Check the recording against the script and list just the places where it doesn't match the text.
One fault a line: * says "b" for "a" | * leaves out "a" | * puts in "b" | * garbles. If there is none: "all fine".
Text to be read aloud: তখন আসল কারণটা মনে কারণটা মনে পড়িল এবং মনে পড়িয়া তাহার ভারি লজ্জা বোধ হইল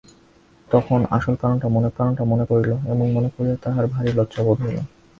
all fine